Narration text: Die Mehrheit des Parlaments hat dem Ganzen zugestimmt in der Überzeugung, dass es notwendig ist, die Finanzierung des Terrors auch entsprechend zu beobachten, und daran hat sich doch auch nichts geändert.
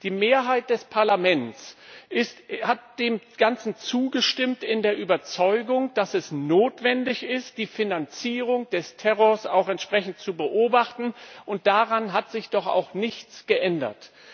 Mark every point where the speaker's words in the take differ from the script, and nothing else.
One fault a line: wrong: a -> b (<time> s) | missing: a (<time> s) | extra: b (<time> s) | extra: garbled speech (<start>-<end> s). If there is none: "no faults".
no faults